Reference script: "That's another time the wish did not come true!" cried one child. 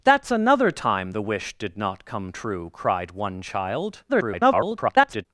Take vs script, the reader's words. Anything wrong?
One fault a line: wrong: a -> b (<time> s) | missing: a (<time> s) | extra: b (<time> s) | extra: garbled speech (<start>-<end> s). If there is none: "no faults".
extra: garbled speech (4.1-5.3 s)